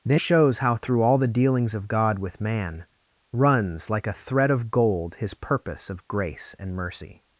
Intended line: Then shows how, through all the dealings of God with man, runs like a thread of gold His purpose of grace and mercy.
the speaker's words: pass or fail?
pass